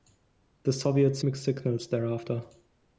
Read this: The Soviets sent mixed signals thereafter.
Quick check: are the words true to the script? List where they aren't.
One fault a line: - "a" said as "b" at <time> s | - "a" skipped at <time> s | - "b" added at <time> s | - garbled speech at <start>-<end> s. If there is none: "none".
- "sent" skipped at 1.2 s